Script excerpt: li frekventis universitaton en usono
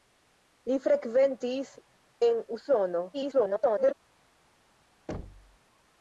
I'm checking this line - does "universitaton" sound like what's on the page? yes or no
no